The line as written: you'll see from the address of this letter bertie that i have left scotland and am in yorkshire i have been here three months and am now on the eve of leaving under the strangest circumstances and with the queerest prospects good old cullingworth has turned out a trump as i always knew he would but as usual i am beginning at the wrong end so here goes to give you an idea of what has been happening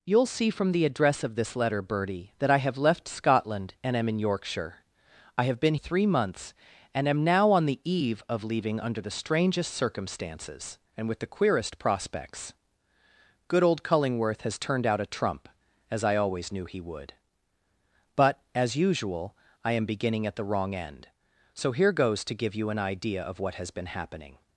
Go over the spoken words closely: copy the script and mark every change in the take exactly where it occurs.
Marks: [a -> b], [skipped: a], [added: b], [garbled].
you'll see from the address of this letter bertie that i have left scotland and am in yorkshire i have been [skipped: here] three months and am now on the eve of leaving under the strangest circumstances and with the queerest prospects good old cullingworth has turned out a trump as i always knew he would but as usual i am beginning at the wrong end so here goes to give you an idea of what has been happening